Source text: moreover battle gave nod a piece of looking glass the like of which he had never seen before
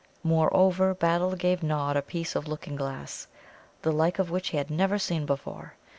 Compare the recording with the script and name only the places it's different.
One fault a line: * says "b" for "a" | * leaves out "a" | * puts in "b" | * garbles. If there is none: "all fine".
all fine